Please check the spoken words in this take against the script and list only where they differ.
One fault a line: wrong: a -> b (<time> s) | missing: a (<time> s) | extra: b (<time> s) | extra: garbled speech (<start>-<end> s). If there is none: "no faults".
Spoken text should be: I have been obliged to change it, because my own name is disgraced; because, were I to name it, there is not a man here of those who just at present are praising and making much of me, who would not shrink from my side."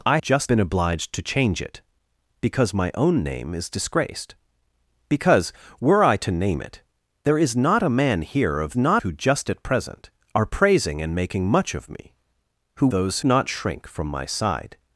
wrong: have -> just (0.2 s)
wrong: those -> not (8.8 s)
wrong: would -> those (12.9 s)